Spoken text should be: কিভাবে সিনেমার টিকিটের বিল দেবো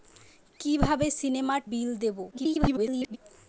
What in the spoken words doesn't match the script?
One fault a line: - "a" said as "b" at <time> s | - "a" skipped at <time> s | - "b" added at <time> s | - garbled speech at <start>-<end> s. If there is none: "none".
- "টিকিটের" skipped at 1.6 s
- garbled speech at 2.3-3.2 s